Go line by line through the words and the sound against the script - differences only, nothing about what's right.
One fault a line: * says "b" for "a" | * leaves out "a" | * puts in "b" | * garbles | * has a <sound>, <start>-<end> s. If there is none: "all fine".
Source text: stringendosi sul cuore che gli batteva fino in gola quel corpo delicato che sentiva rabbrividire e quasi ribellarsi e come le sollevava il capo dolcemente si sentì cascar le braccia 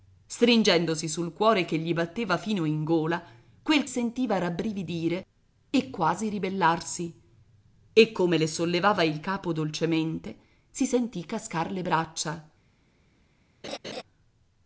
* leaves out "corpo delicato che"
* has a laugh, 13.6-14.0 s